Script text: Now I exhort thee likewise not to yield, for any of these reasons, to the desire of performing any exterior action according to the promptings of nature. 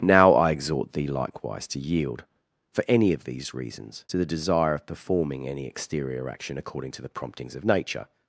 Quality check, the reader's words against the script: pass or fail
fail